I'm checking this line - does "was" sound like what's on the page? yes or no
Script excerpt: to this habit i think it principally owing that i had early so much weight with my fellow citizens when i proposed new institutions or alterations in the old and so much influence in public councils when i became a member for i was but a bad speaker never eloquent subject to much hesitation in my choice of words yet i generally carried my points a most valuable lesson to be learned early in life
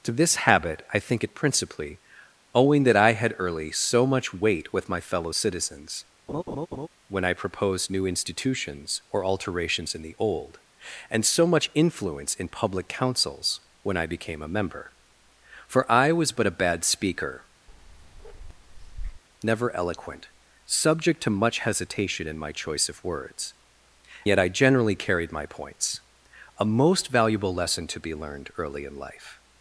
yes